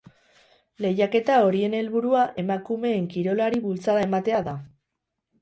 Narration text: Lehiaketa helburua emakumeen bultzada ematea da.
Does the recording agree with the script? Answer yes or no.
no